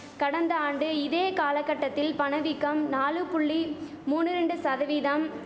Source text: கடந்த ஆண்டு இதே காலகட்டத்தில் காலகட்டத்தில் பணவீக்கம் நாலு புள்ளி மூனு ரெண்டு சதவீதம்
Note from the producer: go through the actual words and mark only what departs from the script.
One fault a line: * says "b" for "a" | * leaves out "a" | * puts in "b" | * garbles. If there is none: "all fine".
* leaves out "காலகட்டத்தில்"